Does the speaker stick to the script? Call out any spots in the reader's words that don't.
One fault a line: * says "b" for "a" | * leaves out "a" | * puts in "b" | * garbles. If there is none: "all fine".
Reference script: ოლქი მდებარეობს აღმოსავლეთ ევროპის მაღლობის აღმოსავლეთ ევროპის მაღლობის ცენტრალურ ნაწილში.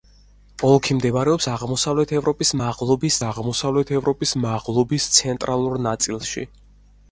all fine